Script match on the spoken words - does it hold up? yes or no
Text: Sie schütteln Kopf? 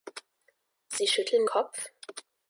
yes